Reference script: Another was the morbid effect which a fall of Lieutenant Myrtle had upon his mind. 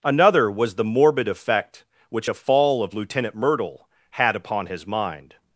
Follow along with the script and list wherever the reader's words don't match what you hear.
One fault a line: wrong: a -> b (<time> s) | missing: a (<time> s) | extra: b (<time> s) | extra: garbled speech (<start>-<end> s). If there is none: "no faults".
no faults